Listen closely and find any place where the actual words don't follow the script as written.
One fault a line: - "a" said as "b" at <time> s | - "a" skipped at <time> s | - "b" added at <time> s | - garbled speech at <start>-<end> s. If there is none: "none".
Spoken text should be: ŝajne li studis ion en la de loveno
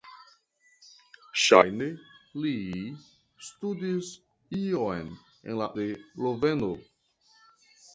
none